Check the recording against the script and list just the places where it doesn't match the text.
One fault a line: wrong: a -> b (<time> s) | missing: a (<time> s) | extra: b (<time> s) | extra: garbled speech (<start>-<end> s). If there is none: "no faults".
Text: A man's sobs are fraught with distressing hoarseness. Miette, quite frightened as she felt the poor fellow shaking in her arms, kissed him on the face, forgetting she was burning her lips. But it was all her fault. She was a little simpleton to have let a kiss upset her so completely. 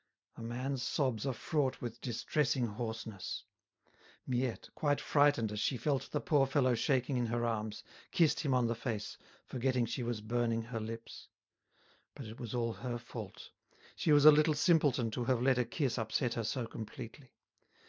no faults